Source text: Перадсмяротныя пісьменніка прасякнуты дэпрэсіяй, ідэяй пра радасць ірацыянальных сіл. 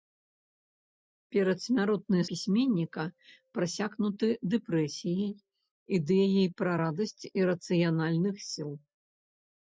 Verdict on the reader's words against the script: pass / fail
pass